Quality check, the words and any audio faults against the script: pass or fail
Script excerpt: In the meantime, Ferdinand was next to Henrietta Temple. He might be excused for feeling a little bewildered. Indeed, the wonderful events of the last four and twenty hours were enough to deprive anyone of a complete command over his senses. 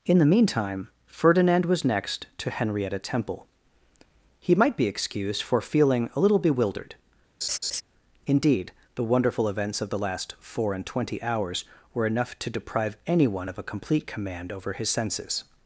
fail